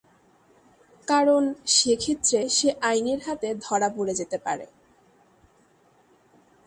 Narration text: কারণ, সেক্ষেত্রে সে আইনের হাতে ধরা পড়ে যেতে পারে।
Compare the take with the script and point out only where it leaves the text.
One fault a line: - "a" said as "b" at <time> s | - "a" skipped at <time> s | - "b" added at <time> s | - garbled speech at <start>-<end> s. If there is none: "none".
none